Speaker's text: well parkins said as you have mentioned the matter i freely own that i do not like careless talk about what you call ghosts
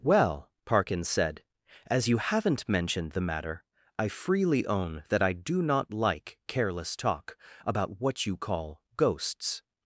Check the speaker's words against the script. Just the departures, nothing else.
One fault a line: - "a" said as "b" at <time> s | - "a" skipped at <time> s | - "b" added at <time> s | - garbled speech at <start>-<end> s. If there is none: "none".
- "have" said as "haven't" at 2.2 s